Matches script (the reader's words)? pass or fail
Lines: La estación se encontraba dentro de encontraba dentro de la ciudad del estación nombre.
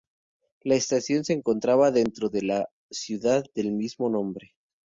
fail